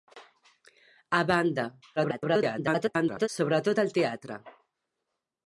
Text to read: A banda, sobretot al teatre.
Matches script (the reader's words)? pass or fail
fail